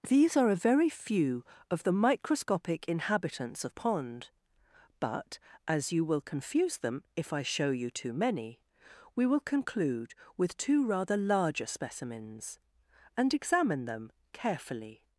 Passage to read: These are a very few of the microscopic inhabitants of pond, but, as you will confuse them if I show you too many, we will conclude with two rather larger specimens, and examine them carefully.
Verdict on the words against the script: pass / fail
pass